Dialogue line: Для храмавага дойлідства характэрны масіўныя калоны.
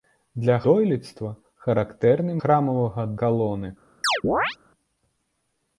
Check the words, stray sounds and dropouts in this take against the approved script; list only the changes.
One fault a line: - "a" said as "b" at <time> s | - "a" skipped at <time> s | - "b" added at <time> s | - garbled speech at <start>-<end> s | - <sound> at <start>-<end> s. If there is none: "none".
- "храмавага" skipped at 0.5 s
- "масіўныя" said as "храмавага" at 2.4 s
- chirp at 4.0-4.6 s